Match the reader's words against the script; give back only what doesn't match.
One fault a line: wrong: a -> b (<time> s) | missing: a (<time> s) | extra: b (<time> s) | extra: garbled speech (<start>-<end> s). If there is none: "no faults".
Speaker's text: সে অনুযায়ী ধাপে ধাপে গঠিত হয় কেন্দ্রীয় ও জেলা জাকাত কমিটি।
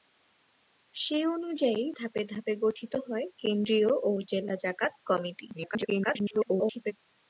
extra: garbled speech (5.5-6.9 s)